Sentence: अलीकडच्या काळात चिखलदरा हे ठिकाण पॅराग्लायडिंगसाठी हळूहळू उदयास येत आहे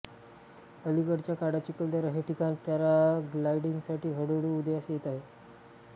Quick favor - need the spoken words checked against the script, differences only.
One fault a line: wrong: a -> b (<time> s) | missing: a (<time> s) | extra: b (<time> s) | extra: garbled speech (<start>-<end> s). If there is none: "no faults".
no faults